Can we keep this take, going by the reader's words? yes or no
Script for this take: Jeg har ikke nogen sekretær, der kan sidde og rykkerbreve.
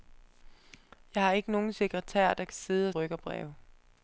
yes